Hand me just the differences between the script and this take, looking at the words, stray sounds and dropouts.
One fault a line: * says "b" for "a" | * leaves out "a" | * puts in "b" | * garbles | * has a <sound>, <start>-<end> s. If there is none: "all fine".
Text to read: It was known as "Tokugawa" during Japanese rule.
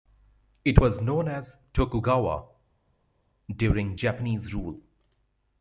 all fine